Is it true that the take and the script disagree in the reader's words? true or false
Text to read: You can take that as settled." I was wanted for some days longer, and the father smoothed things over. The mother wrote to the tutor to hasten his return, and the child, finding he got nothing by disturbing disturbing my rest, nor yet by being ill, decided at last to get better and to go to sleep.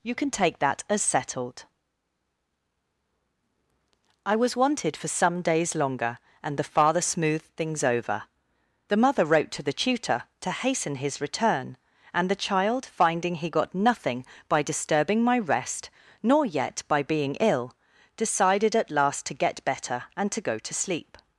true